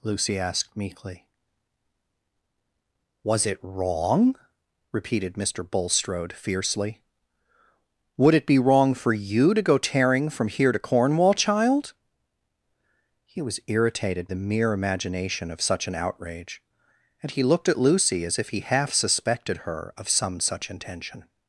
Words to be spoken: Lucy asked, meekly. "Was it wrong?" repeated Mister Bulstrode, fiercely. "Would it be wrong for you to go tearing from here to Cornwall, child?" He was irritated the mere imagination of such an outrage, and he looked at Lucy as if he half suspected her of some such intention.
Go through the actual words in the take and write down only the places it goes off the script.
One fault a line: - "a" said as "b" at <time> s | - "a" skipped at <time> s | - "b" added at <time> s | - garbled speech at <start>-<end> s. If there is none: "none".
none